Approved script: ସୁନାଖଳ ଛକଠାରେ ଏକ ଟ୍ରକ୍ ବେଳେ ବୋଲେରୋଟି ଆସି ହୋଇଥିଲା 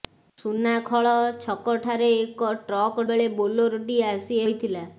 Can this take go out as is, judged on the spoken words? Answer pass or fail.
pass